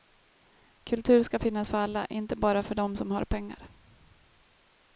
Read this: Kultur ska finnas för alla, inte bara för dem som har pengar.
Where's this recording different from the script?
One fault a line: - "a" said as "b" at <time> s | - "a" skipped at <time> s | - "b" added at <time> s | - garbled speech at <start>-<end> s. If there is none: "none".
none